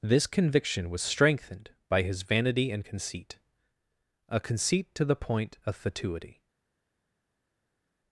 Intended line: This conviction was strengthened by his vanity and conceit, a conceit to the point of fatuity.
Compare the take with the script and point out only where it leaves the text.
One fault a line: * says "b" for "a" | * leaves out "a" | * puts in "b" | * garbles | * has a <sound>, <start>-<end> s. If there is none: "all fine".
all fine